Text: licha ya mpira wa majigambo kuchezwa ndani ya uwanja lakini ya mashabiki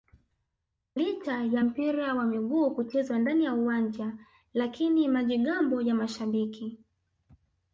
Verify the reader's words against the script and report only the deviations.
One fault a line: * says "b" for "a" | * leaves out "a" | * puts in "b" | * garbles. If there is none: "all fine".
* says "miguu" for "majigambo"
* puts in "majigambo"